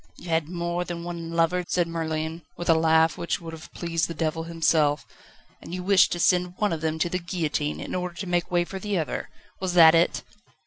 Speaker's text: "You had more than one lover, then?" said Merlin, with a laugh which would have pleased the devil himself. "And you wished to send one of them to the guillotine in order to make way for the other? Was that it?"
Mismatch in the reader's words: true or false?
true